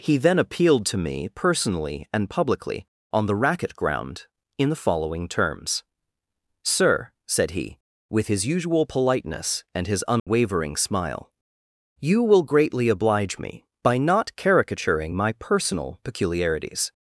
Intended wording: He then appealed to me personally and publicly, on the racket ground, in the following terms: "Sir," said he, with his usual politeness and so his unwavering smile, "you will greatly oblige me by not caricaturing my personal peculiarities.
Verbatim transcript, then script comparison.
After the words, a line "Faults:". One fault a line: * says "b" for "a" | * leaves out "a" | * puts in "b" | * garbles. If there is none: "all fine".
He then appealed to me personally and publicly, on the racket ground, in the following terms: "Sir," said he, with his usual politeness and his unwavering smile, "you will greatly oblige me by not caricaturing my personal peculiarities.
Faults:
* leaves out "so"